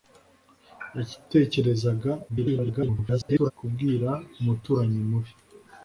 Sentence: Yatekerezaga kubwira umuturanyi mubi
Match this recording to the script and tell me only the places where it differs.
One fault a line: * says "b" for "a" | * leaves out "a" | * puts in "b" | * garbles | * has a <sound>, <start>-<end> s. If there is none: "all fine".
* garbles